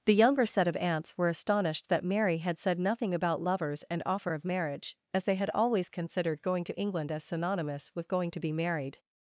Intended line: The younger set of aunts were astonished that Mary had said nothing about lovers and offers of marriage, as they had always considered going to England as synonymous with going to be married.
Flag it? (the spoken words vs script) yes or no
yes